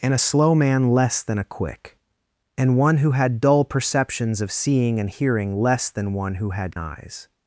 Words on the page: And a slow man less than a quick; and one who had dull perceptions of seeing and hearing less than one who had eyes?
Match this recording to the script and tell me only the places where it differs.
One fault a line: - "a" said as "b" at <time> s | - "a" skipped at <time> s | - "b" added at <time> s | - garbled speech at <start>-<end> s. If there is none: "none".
none